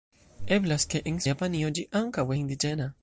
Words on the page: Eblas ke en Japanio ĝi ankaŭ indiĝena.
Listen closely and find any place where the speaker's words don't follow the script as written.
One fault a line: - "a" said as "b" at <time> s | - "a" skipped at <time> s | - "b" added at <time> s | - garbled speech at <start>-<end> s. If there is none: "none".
none